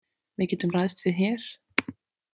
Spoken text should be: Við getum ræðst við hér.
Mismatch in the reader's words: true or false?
false